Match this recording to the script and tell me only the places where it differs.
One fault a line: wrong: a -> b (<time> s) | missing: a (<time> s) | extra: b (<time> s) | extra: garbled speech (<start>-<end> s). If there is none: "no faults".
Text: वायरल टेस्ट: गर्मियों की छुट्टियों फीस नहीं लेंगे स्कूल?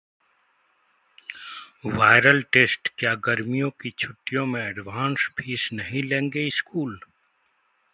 extra: क्या (3.0 s)
extra: में एडवांस (4.5 s)